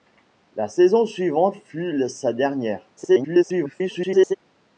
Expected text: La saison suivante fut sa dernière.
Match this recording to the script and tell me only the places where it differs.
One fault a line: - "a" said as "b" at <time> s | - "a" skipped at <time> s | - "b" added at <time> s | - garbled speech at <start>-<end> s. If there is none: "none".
- garbled speech at 3.0-4.3 s